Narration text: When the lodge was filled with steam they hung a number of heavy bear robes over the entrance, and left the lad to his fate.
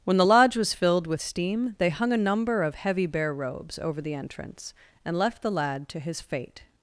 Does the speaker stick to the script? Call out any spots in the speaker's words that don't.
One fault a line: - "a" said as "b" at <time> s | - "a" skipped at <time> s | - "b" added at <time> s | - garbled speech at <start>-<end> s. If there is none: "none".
none